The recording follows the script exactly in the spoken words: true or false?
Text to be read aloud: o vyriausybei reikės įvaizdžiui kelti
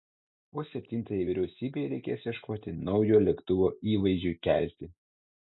false